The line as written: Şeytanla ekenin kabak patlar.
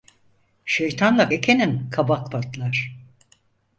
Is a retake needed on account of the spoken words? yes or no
no